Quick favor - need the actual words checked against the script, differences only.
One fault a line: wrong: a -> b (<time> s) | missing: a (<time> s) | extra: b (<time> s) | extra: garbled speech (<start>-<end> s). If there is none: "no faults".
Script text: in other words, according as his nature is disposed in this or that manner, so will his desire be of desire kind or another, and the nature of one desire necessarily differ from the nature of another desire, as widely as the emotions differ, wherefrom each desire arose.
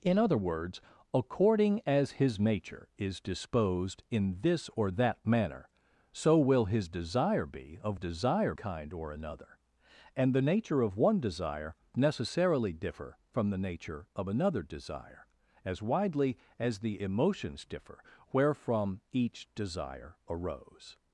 no faults